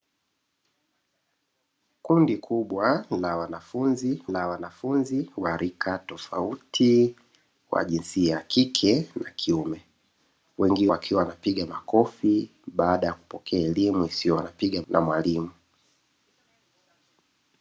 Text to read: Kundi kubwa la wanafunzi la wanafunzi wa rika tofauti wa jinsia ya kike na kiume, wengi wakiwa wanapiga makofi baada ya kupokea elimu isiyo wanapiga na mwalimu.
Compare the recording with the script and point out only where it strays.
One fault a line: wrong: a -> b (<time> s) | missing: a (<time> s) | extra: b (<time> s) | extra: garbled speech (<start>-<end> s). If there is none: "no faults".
no faults